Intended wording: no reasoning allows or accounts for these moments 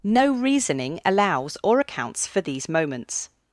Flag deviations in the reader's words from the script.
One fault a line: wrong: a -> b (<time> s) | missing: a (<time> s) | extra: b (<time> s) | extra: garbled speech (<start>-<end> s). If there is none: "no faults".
no faults